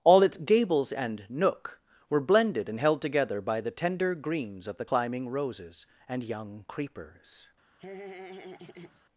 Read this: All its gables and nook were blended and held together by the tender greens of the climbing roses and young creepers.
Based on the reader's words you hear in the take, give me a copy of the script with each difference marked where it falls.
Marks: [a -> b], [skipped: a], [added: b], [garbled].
All its gables and nook were blended and held together by the tender greens of the climbing roses and young creepers.